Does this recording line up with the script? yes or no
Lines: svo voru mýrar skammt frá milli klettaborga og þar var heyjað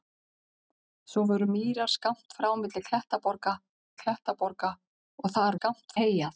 no